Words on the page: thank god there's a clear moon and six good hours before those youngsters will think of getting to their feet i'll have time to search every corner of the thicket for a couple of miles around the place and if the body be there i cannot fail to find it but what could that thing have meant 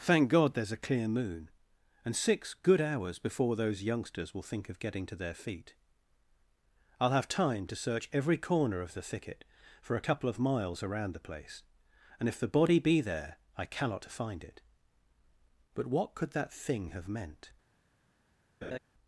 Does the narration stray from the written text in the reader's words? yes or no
yes